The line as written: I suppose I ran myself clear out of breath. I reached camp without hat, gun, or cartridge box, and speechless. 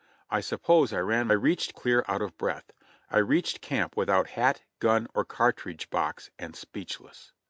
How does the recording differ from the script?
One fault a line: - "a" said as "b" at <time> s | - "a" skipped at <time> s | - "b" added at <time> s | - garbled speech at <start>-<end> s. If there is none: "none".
- "myself" said as "reached" at 1.3 s